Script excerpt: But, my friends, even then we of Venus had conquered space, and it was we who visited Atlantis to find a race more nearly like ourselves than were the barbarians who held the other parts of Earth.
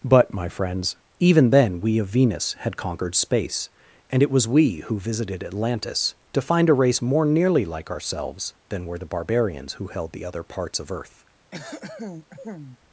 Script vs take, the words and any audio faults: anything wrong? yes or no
yes